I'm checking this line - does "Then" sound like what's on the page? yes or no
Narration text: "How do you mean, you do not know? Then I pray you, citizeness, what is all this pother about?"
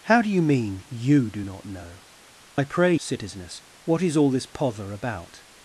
no